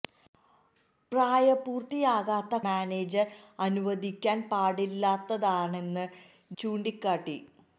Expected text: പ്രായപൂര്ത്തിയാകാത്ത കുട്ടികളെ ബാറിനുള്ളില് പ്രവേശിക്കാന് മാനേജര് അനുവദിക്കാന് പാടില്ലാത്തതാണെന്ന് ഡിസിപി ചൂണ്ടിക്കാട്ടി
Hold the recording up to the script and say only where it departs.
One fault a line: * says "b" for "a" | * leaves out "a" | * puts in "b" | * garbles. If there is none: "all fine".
* leaves out "കുട്ടികളെ ബാറിനുള്ളില് പ്രവേശിക്കാന്"
* leaves out "ഡിസിപി"